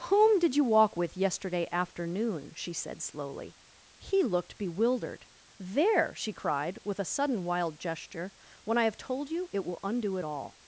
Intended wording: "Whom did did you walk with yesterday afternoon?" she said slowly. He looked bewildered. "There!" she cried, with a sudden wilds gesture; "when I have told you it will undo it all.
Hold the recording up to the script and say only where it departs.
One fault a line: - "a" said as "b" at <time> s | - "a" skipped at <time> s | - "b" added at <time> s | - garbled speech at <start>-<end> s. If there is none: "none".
- "did" skipped at 0.6 s
- "wilds" said as "wild" at 7.4 s